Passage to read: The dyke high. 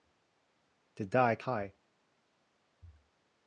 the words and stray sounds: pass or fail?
pass